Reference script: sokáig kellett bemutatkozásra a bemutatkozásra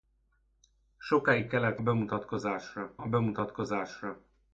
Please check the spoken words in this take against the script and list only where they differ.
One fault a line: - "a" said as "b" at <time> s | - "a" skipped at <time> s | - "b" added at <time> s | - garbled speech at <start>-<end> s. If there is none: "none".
none